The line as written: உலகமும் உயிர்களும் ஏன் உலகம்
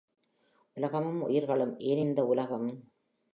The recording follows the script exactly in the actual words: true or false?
false